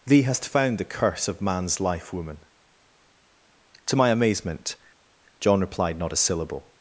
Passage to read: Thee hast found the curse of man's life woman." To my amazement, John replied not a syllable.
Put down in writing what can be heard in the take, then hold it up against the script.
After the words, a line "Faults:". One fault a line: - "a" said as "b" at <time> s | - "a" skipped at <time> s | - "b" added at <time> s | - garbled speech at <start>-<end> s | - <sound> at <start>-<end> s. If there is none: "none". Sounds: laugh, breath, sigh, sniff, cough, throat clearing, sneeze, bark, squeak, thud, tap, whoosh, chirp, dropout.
Thee hast found the curse of man's life woman." To my amazement, John replied not a syllable.
Faults:
none